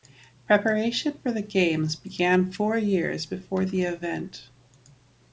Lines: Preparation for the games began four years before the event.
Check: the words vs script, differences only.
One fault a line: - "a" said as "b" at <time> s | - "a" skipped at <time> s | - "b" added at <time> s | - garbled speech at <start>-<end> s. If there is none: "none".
none